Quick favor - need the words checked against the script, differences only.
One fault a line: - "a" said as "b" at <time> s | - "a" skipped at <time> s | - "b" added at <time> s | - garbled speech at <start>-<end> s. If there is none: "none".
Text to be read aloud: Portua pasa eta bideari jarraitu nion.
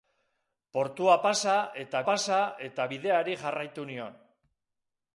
- "pasa eta" added at 2.1 s